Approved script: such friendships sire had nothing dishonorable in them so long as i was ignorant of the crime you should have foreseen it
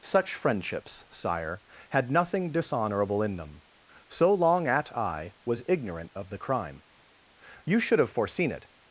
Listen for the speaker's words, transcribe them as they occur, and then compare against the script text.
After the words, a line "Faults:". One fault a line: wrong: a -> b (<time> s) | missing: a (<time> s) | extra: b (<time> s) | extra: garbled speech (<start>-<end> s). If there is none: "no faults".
such friendships sire had nothing dishonorable in them so long at i was ignorant of the crime you should have foreseen it
Faults:
wrong: as -> at (4.7 s)